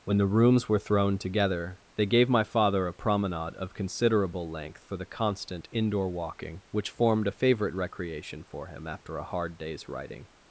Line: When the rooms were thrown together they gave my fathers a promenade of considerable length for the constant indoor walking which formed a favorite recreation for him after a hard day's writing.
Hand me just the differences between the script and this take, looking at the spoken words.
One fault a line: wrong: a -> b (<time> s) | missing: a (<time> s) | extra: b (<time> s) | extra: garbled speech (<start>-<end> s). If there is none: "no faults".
wrong: fathers -> father (2.4 s)